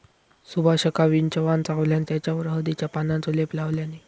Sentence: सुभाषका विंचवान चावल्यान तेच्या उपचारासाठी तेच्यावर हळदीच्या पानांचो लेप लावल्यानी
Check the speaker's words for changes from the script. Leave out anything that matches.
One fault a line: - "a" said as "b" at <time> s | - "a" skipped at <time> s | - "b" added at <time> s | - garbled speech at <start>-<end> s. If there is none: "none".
- "तेच्या उपचारासाठी" skipped at 2.0 s